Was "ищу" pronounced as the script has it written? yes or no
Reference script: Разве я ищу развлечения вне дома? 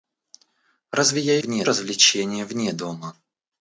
no